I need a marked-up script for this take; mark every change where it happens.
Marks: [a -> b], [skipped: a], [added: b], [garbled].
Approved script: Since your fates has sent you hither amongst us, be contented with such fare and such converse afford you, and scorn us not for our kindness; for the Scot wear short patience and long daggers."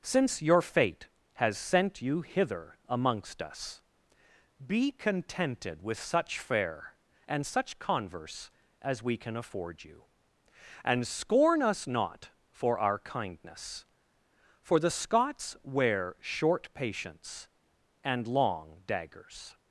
Since your [fates -> fate] has sent you hither amongst us, be contented with such fare and such converse [added: as we can] afford you, and scorn us not for our kindness; for the [Scot -> Scots] wear short patience and long daggers."